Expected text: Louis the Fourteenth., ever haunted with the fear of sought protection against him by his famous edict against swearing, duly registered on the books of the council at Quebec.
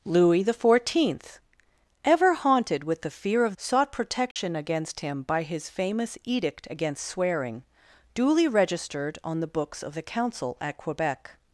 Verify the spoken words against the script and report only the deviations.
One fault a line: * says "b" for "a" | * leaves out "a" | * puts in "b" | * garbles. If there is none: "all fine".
all fine